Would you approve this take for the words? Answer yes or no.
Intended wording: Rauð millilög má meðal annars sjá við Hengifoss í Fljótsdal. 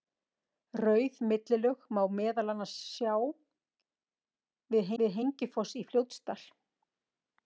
no